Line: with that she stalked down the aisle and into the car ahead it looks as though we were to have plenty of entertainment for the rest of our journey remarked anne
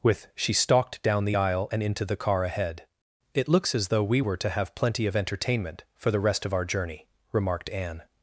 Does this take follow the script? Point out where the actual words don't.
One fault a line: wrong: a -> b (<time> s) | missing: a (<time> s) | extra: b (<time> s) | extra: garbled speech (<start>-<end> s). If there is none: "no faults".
missing: that (0.3 s)